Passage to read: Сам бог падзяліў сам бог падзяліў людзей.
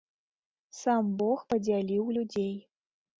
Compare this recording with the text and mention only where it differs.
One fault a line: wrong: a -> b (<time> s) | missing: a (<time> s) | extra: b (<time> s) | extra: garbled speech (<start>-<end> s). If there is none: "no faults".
missing: сам бог падзяліў (2.1 s)